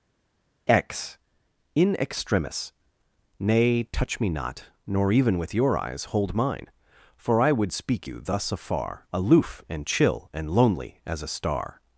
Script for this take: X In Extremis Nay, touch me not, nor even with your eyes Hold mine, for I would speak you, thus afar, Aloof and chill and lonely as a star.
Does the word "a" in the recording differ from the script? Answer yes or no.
no